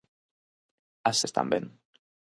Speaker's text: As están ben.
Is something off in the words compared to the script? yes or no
no